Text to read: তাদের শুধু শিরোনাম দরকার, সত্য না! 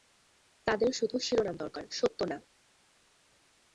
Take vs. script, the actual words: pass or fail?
pass